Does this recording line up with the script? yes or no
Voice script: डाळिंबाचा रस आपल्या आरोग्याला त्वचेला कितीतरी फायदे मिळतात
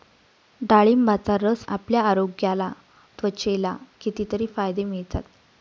yes